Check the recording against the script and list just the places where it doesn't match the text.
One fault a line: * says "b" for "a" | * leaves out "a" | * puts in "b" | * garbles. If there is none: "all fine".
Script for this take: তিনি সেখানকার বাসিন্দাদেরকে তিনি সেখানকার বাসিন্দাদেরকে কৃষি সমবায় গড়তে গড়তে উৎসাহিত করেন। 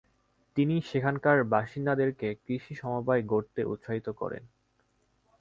* leaves out "তিনি সেখানকার বাসিন্দাদেরকে"
* leaves out "গড়তে"